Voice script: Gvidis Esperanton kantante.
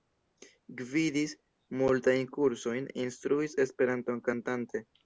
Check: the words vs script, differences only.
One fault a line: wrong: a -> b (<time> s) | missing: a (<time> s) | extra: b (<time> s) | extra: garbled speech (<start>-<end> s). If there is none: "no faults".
extra: multajn kursojn instruis (1.8 s)